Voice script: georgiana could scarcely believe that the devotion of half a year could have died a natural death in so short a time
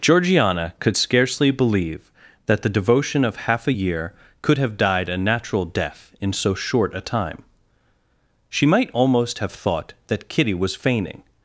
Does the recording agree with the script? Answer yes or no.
no